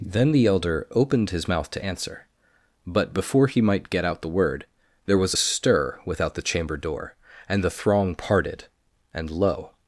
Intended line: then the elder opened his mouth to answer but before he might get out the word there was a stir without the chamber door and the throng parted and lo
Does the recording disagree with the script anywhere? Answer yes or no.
no